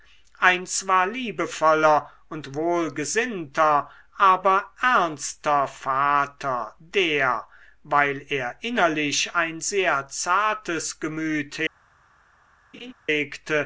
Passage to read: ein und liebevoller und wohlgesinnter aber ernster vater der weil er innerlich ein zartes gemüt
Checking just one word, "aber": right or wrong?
right